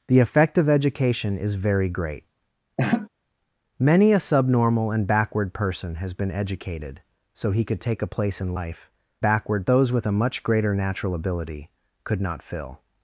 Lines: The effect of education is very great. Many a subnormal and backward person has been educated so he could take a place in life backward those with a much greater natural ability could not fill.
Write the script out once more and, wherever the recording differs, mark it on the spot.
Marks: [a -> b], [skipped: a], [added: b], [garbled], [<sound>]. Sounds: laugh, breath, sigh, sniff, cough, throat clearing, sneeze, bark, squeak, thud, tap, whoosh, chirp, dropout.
The effect of education is very great. [laugh] Many a subnormal and backward person has been educated so he could take a place in life backward those with a much greater natural ability could not fill.